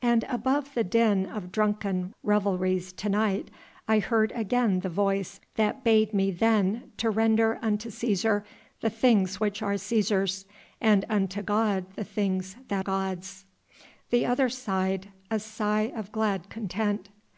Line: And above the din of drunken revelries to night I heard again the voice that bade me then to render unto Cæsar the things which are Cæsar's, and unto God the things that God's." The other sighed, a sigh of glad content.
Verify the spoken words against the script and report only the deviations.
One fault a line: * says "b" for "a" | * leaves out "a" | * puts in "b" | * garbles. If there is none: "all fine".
all fine